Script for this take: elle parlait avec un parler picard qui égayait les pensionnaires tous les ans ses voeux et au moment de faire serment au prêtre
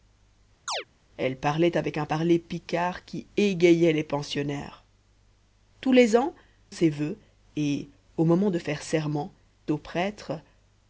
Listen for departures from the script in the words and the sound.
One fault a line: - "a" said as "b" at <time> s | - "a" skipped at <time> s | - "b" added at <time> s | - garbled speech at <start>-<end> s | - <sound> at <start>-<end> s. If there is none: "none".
- chirp at 0.7-0.8 s